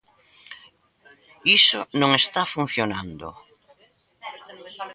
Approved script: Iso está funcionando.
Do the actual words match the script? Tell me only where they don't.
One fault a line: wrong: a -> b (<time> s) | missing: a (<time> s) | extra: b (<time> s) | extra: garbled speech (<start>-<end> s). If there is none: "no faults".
extra: non (2.0 s)